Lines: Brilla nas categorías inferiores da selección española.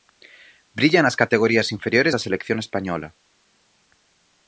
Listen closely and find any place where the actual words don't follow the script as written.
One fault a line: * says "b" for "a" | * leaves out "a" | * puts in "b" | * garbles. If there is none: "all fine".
all fine